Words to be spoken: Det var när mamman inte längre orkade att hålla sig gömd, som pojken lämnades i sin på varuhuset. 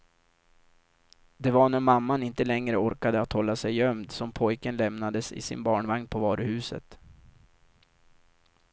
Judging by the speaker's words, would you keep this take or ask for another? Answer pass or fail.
fail